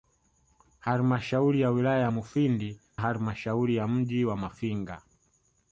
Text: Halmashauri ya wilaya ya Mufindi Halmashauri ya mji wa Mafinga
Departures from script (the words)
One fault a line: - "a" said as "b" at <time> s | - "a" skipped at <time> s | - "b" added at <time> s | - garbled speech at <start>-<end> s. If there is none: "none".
none